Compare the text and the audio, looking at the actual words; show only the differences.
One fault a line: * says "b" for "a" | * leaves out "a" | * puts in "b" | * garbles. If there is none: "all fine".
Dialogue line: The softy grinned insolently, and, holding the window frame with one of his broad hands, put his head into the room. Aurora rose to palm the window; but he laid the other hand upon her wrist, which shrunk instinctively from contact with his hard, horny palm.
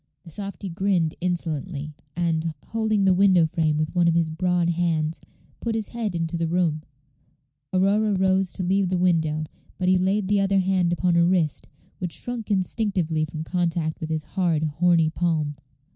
* says "leave" for "palm"